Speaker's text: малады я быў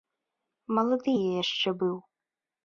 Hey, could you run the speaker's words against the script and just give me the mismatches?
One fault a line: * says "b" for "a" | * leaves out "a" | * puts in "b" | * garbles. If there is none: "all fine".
* puts in "яшчэ"